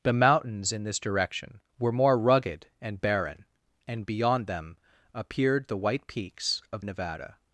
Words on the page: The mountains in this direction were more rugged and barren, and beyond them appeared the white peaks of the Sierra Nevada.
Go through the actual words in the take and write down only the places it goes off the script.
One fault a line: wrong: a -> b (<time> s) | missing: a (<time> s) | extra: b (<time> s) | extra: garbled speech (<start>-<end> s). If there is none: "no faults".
missing: the Sierra (6.8 s)